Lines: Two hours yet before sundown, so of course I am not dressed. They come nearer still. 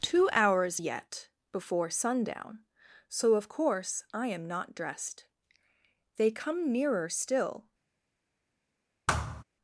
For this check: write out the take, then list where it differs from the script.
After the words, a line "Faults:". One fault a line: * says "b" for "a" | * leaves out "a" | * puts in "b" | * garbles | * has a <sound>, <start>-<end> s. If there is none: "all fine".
Two hours yet before sundown, so of course I am not dressed. They come nearer still.
Faults:
* has a thud, 9.1-9.4 s